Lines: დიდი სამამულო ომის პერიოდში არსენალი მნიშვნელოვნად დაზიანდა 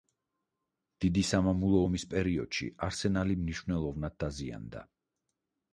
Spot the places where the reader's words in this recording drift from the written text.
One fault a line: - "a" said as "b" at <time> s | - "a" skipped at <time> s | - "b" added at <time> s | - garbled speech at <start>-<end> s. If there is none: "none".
none